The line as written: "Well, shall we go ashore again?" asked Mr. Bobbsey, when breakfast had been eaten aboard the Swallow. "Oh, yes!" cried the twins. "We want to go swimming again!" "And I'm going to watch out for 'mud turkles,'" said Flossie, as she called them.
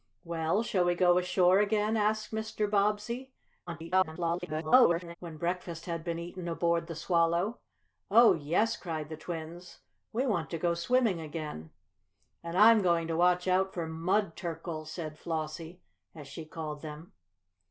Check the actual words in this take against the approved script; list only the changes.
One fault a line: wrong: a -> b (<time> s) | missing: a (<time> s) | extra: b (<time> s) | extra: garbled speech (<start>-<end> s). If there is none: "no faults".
extra: garbled speech (3.7-5.2 s)